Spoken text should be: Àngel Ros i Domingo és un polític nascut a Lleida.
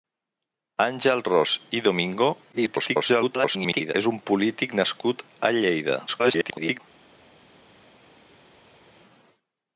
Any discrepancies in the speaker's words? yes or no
yes